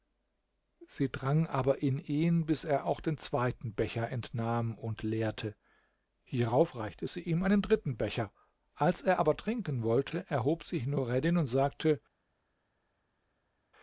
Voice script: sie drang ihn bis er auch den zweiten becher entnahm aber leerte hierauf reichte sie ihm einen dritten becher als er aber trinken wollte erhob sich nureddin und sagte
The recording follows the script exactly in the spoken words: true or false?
false